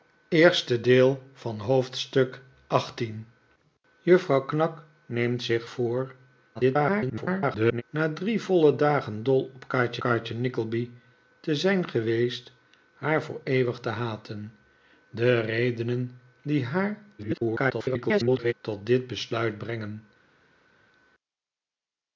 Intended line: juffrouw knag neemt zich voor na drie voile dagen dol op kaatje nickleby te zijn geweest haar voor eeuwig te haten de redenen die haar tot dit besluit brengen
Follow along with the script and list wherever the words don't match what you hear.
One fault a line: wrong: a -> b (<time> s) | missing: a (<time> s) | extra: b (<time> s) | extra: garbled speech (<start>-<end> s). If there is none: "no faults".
extra: garbled speech (6.5-7.8 s)
extra: kaatje (10.0 s)
extra: garbled speech (17.2-18.5 s)